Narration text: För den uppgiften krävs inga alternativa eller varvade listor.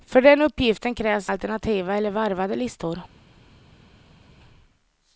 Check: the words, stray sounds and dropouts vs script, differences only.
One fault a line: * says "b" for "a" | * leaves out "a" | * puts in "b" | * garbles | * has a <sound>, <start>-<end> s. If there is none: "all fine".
* leaves out "inga"